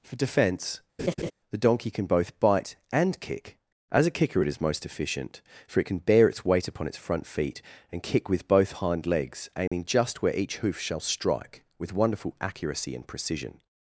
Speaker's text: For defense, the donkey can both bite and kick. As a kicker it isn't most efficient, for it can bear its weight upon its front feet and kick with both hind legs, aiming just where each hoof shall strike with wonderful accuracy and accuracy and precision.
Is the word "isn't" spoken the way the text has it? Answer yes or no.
no